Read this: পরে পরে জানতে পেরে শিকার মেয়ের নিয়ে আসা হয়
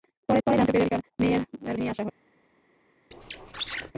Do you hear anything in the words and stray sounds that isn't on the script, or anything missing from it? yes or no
yes